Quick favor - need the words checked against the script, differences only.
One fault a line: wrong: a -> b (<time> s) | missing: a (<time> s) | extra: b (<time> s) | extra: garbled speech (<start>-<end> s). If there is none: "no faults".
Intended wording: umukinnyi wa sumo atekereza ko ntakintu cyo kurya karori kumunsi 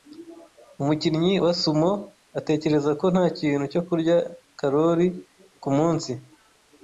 no faults